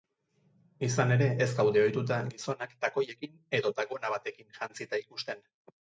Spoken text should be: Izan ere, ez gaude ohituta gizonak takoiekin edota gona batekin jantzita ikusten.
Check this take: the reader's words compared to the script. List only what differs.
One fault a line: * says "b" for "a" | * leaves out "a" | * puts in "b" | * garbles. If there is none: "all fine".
all fine